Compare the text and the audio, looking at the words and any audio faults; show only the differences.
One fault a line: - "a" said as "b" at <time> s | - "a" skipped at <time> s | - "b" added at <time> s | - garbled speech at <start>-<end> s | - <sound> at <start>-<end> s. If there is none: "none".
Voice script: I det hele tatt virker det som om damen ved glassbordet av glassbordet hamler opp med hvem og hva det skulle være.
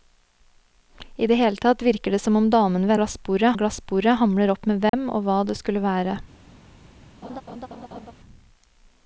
- dropout at 4.9-4.9 s
- laugh at 7.2-8.1 s